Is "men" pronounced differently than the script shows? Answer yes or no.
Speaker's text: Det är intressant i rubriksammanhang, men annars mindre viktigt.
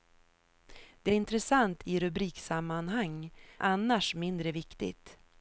yes